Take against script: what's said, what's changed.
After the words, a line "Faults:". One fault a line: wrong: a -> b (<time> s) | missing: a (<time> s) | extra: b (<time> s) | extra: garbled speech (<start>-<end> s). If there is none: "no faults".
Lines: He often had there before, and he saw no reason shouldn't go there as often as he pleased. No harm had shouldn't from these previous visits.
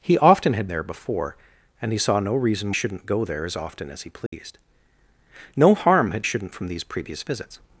He often had there before, and he saw no reason shouldn't go there as often as he pleased. No harm had shouldn't from these previous visits.
Faults:
no faults